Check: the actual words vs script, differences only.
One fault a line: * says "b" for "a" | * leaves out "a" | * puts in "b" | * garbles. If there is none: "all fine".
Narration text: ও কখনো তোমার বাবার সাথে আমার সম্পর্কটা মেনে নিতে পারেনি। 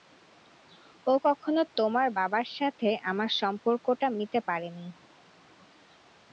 * leaves out "মেনে"